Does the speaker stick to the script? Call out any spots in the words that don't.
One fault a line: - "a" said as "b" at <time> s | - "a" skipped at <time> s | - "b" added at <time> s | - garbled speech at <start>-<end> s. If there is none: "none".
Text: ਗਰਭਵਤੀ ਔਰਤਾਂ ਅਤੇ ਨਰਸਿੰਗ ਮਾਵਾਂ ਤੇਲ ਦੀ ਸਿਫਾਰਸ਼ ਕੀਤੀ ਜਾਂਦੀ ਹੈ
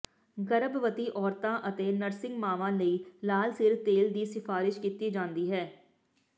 - "ਲਈ ਲਾਲ ਸਿਰ" added at 2.7 s